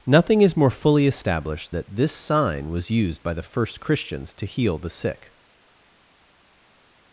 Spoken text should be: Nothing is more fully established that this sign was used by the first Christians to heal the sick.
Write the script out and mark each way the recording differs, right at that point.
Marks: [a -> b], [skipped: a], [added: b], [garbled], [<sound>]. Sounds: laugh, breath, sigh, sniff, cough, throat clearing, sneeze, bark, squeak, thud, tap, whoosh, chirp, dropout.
Nothing is more fully established that this sign was used by the first Christians to heal the sick.